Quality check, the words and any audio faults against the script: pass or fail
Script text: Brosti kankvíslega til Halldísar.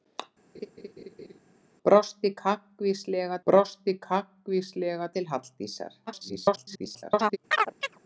fail